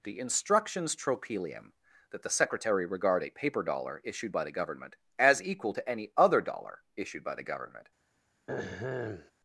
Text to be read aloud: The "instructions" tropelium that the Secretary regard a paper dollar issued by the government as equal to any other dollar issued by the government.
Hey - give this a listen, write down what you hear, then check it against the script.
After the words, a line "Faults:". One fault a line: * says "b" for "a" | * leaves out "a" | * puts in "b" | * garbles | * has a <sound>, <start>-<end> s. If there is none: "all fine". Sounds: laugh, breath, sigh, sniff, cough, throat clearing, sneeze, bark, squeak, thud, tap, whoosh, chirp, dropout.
The "instructions" tropelium that the Secretary regard a paper dollar issued by the government as equal to any other dollar issued by the government.
Faults:
* has a throat clearing, 8.5-9.3 s